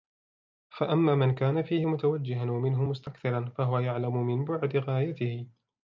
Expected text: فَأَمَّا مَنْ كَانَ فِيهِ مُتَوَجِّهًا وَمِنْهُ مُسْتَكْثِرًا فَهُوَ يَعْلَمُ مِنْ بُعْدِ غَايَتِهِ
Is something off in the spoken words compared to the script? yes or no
no